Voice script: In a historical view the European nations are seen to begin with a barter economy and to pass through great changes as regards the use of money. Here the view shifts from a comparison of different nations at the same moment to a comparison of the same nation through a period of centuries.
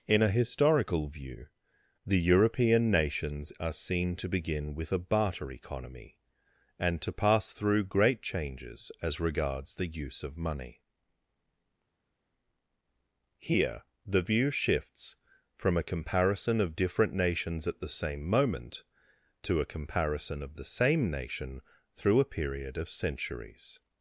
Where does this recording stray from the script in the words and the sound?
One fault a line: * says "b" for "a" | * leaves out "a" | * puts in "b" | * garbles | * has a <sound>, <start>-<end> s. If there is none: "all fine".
all fine